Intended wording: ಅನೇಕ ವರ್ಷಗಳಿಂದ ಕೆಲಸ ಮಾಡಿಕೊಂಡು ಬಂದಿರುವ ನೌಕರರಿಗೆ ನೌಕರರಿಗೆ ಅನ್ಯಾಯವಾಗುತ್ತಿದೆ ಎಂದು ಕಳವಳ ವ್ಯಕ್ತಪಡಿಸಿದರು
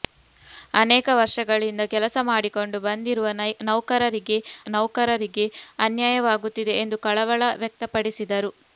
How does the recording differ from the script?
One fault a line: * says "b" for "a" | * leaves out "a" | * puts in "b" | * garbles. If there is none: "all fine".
all fine